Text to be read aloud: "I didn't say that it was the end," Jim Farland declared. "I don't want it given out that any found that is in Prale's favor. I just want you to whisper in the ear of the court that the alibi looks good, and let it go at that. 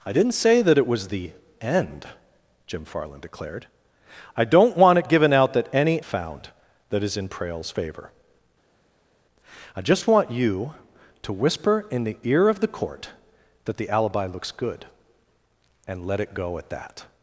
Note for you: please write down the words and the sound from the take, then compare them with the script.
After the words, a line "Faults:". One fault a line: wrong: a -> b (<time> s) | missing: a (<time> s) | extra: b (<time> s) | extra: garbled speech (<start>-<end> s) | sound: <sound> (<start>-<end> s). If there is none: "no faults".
"I didn't say that it was the end," Jim Farland declared. "I don't want it given out that any found that is in Prale's favor. I just want you to whisper in the ear of the court that the alibi looks good, and let it go at that.
Faults:
no faults